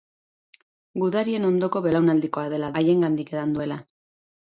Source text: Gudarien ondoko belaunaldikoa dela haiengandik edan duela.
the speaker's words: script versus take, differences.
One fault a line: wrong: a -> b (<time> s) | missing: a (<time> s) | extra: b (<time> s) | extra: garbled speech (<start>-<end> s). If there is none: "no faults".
no faults